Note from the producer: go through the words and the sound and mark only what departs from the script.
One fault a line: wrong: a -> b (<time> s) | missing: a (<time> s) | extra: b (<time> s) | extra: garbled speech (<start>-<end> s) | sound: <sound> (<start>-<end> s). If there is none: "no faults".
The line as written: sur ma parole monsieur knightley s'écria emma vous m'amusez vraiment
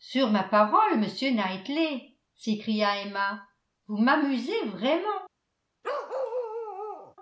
sound: bark (5.8-7.2 s)